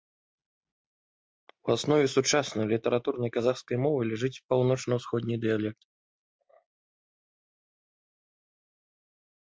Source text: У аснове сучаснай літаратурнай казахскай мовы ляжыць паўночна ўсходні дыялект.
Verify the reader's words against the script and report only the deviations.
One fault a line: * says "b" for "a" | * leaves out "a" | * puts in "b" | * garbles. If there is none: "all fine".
all fine